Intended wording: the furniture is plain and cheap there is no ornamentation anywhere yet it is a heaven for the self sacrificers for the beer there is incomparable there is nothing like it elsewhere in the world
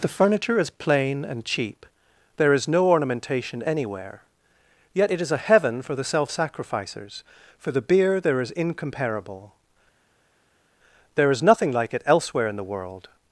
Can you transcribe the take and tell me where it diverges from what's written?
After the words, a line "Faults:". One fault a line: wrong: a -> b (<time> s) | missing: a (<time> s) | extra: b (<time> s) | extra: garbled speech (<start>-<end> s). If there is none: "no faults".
the furniture is plain and cheap there is no ornamentation anywhere yet it is a heaven for the self sacrificers for the beer there is incomparable there is nothing like it elsewhere in the world
Faults:
no faults